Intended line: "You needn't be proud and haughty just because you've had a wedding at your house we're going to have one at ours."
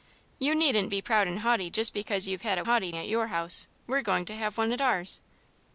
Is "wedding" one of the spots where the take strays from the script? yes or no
yes